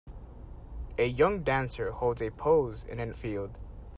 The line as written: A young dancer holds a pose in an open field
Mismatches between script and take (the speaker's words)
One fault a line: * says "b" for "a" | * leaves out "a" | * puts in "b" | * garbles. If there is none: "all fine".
* leaves out "open"